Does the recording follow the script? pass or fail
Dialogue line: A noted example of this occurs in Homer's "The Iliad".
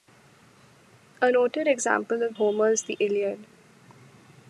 fail